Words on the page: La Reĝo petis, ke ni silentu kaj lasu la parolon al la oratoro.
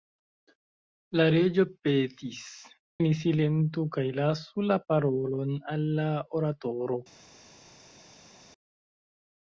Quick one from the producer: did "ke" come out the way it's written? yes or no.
no